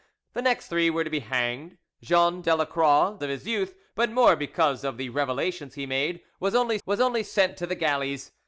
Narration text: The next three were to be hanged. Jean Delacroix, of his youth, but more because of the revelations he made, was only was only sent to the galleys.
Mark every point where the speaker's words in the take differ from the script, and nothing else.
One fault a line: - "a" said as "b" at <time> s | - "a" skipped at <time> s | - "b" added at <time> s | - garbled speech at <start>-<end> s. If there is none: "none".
none